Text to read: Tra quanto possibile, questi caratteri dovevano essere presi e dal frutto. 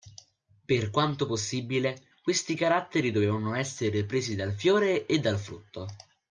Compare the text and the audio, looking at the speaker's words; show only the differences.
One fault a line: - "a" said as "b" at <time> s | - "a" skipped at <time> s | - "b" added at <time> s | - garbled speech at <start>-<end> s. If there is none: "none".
- "Tra" said as "Per" at 0.7 s
- "dal fiore" added at 4.4 s